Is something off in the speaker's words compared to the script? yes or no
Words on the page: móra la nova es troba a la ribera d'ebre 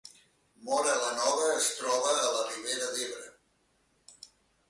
no